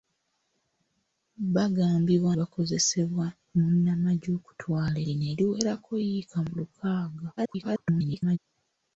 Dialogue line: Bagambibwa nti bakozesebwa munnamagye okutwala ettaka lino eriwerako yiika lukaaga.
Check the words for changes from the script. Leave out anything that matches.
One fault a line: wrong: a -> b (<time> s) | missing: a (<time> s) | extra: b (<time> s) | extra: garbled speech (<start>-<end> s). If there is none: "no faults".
missing: nti (2.3 s)
missing: ettaka (5.0 s)
extra: garbled speech (7.4-8.4 s)